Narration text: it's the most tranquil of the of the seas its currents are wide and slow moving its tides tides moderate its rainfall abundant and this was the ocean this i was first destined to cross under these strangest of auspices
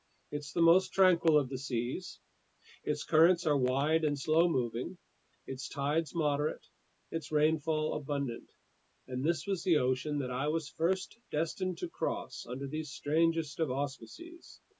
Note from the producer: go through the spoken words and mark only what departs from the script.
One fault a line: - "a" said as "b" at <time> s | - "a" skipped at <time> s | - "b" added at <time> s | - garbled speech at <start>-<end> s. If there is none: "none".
- "of the" skipped at 1.6 s
- "tides" skipped at 6.1 s
- "this" said as "that" at 10.2 s